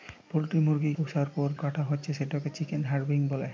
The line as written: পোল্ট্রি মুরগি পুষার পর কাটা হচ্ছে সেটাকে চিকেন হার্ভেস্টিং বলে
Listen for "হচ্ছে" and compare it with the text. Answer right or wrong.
right